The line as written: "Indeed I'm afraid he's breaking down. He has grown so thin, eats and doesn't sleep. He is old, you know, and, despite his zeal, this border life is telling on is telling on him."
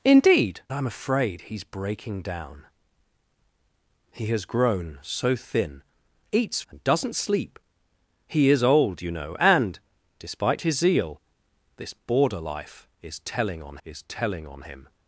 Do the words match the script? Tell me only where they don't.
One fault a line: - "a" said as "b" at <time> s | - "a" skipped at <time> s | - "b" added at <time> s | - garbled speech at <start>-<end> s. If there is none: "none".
none